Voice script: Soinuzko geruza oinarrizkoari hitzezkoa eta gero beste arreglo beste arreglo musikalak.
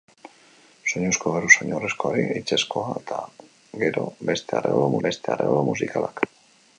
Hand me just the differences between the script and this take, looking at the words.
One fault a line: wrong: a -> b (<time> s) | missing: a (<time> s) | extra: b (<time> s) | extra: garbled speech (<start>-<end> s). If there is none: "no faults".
no faults